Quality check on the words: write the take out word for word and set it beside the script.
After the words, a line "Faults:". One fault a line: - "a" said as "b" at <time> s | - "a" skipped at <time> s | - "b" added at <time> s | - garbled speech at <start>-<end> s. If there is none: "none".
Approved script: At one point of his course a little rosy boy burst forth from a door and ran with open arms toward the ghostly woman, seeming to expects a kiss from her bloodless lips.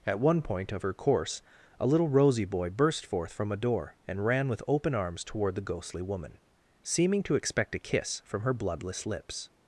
At one point of her course a little rosy boy burst forth from a door and ran with open arms toward the ghostly woman, seeming to expect a kiss from her bloodless lips.
Faults:
- "his" said as "her" at 0.8 s
- "expects" said as "expect" at 7.3 s